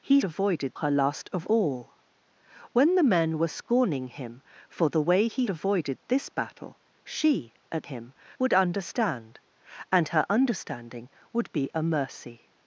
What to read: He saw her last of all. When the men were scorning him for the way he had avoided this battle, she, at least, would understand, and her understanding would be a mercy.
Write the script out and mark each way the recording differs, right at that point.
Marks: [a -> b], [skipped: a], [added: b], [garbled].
He [saw -> avoided] her last of all. When the men were scorning him for the way he [skipped: had] avoided this battle, she, at [least, -> him] would understand, and her understanding would be a mercy.